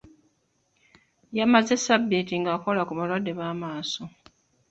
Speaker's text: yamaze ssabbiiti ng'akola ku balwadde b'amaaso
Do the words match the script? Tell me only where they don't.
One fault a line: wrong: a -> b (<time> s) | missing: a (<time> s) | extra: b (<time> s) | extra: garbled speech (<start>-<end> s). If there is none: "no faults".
no faults